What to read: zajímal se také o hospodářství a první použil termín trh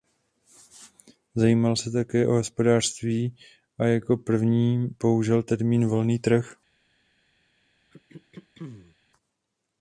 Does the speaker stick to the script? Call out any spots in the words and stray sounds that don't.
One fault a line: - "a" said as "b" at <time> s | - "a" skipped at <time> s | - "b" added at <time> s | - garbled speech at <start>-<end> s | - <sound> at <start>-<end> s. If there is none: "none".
- "jako" added at 3.8 s
- "volný" added at 5.9 s
- throat clearing at 7.9-9.0 s